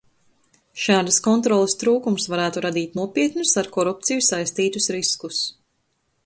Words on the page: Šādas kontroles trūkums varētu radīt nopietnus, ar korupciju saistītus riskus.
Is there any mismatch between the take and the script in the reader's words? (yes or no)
no